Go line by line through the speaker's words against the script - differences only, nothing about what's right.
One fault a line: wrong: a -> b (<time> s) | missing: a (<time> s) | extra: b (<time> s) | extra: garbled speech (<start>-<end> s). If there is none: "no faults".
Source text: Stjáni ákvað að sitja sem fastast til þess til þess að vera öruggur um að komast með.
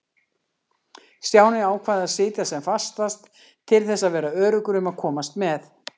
missing: til þess (4.1 s)